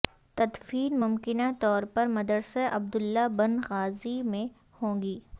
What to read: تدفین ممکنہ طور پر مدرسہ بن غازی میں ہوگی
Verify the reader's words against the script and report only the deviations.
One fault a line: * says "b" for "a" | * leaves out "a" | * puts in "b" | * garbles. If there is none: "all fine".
* puts in "عبداللہ"